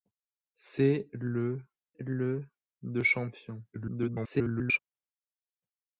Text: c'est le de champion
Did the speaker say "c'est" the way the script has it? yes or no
yes